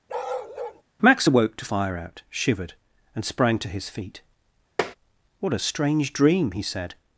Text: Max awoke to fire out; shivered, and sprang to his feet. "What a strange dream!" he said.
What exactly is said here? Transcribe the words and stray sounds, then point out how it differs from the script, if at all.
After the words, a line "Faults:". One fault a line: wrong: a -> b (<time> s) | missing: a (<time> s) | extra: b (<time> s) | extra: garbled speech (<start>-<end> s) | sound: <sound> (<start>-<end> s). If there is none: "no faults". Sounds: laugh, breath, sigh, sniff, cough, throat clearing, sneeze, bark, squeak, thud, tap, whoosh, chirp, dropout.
Max awoke to fire out; shivered, and sprang to his feet. "What a strange dream!" he said.
Faults:
sound: bark (0.1-0.8 s)
sound: tap (4.8-5.0 s)